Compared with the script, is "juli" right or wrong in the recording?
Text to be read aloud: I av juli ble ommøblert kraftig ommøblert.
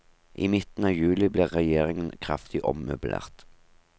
right